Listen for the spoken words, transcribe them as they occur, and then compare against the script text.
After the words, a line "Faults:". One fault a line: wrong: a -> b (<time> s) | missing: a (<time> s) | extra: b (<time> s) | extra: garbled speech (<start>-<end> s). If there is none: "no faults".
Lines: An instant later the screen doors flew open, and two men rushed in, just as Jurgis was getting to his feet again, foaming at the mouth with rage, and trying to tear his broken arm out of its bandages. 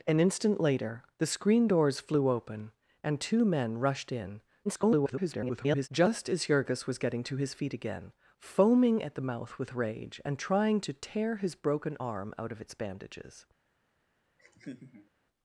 An instant later the screen doors flew open, and two men rushed in, [garbled] just as Jurgis was getting to his feet again, foaming at the mouth with rage, and trying to tear his broken arm out of its bandages.
Faults:
extra: garbled speech (4.6-5.9 s)